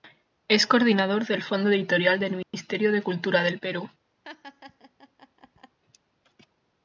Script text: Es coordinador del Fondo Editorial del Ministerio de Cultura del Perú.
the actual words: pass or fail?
pass